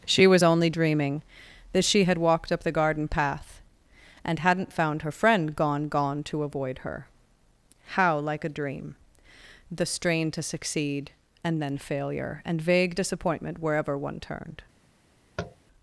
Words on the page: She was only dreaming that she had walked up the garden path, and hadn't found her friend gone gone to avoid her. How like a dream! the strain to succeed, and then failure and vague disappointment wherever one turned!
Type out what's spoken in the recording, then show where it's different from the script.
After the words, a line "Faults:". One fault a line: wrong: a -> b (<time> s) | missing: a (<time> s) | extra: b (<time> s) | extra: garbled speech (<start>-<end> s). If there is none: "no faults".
She was only dreaming that she had walked up the garden path, and hadn't found her friend gone gone to avoid her. How like a dream! the strain to succeed, and then failure and vague disappointment wherever one turned!
Faults:
no faults